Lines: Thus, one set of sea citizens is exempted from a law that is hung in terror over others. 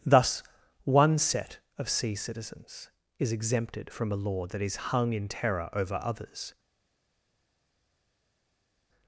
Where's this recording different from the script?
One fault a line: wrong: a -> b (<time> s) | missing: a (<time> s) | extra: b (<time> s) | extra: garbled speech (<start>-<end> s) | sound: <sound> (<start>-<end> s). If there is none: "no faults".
no faults